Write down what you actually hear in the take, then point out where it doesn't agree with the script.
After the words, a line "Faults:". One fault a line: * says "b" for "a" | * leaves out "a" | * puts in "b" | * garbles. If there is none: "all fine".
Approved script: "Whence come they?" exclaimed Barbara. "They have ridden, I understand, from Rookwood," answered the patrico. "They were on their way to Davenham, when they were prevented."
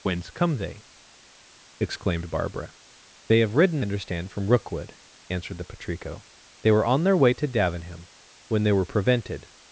"Whence come they?" exclaimed Barbara. "They have ridden, understand, from Rookwood," answered the patrico. "They were on their way to Davenham, when they were prevented."
Faults:
* leaves out "I"